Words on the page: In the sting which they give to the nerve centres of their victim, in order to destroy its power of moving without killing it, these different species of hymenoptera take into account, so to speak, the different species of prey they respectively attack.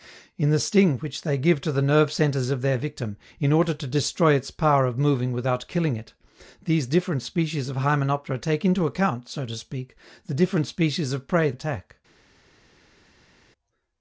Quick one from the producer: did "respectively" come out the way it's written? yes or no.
no